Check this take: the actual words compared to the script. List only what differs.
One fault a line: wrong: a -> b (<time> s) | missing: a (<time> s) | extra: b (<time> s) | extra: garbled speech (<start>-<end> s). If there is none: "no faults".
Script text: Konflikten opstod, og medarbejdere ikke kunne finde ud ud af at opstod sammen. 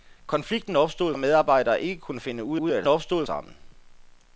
no faults